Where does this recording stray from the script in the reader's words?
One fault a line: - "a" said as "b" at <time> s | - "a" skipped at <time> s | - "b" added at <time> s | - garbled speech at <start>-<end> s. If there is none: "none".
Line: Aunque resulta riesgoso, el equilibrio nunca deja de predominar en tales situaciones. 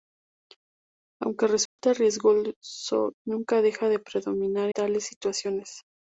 - "el equilibrio" skipped at 3.1 s
- "en" skipped at 4.7 s